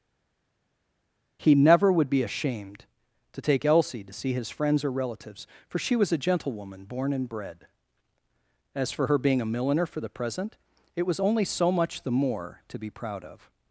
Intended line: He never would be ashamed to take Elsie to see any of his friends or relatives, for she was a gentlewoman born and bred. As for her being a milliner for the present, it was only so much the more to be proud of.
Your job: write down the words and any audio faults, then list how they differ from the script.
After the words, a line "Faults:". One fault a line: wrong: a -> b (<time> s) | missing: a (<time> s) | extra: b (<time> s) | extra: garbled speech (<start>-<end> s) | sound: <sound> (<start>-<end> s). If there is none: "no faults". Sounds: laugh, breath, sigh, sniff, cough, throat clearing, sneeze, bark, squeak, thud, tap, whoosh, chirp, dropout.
He never would be ashamed to take Elsie to see his friends or relatives, for she was a gentlewoman born and bred. As for her being a milliner for the present, it was only so much the more to be proud of.
Faults:
missing: any of (4.3 s)